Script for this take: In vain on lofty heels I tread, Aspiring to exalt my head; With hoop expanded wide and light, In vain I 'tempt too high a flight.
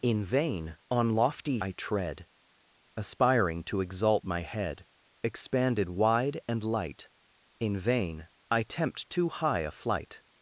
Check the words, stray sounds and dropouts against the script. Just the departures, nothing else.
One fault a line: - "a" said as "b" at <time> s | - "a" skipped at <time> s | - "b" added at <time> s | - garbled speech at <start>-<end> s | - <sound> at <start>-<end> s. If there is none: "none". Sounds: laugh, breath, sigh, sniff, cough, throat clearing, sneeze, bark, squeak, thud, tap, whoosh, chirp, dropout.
- "heels" skipped at 1.6 s
- "With hoop" skipped at 4.8 s